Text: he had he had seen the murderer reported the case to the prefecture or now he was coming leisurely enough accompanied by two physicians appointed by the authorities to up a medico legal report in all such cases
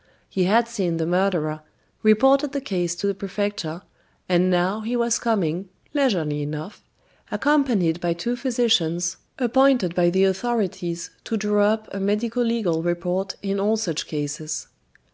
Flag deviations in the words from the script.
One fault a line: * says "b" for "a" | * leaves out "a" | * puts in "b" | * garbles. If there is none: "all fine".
* leaves out "he had"
* says "and" for "or"
* puts in "draw"